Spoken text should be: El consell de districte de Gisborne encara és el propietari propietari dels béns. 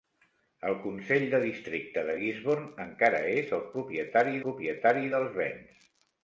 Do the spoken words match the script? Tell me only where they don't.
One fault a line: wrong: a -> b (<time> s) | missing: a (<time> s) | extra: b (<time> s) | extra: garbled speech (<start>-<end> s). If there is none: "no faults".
no faults